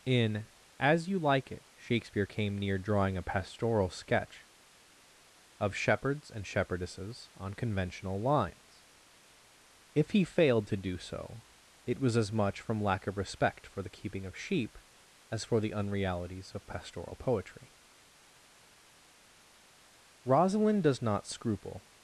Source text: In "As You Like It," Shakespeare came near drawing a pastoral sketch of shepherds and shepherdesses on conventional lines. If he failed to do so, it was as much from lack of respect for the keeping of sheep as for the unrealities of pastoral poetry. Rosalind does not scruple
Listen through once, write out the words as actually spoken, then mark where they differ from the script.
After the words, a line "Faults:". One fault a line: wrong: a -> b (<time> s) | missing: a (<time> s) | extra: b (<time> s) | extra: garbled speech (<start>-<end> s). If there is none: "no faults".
In "As You Like It," Shakespeare came near drawing a pastoral sketch of shepherds and shepherdesses on conventional lines. If he failed to do so, it was as much from lack of respect for the keeping of sheep as for the unrealities of pastoral poetry. Rosalind does not scruple
Faults:
no faults